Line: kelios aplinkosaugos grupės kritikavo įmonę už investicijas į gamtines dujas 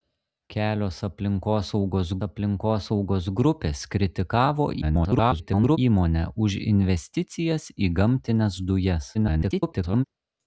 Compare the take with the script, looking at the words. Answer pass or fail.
fail